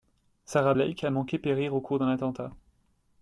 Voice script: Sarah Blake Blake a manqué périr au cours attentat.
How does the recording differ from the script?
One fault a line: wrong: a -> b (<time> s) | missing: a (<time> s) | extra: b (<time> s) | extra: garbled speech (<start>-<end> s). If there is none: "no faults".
missing: Blake (1.0 s)
extra: d'un (2.0 s)